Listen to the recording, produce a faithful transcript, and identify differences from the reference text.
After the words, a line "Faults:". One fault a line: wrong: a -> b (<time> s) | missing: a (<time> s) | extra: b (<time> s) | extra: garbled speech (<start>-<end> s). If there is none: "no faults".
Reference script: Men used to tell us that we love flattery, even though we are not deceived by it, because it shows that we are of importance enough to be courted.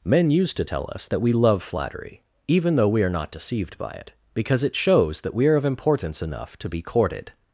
Men used to tell us that we love flattery, even though we are not deceived by it, because it shows that we are of importance enough to be courted.
Faults:
no faults